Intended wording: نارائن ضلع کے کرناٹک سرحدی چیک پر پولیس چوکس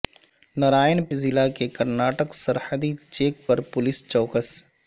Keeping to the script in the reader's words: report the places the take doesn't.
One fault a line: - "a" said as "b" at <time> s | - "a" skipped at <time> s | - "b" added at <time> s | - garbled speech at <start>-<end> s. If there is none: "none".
none